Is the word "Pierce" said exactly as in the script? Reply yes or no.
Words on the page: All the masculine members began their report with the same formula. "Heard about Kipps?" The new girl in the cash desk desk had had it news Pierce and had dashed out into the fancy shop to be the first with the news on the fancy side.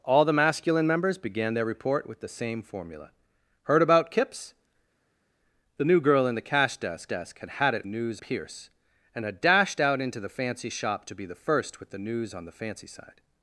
yes